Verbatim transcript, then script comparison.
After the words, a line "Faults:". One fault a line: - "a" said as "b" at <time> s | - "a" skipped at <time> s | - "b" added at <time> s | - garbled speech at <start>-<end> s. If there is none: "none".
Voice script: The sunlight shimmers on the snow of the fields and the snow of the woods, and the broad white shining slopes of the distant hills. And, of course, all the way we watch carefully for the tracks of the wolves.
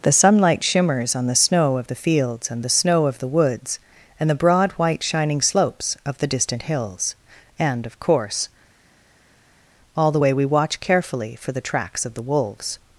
The sunlight shimmers on the snow of the fields and the snow of the woods, and the broad white shining slopes of the distant hills. And, of course, all the way we watch carefully for the tracks of the wolves.
Faults:
none